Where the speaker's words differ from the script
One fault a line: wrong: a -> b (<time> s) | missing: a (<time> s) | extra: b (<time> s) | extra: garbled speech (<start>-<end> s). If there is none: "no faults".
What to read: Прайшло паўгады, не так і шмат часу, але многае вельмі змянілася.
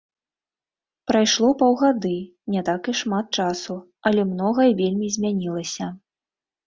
no faults